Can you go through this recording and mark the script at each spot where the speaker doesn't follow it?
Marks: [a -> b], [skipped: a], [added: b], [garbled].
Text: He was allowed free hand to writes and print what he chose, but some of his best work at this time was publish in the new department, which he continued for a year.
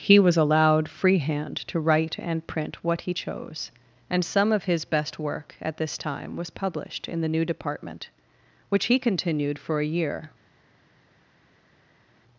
He was allowed free hand to [writes -> write] and print what he chose, [but -> and] some of his best work at this time was [publish -> published] in the new department, which he continued for a year.